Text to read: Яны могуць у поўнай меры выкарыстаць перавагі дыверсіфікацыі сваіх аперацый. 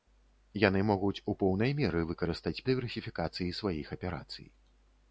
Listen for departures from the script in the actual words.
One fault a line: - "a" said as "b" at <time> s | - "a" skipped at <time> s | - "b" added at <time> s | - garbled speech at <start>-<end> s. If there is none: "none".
- "перавагі" skipped at 2.5 s